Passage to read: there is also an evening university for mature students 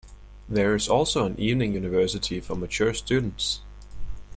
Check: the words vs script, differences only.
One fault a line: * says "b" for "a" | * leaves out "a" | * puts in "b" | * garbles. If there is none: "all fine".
all fine